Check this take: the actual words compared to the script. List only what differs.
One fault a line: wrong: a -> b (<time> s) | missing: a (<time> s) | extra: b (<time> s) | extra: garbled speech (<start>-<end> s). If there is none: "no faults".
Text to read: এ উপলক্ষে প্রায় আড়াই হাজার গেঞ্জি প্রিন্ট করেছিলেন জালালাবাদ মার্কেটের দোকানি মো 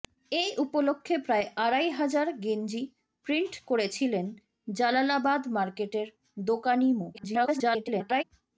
extra: garbled speech (7.1-8.2 s)